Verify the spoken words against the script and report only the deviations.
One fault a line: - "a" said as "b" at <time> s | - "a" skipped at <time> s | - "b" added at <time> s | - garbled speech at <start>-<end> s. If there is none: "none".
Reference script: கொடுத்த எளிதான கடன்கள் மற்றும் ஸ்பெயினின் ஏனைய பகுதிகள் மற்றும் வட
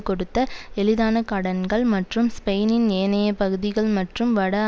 none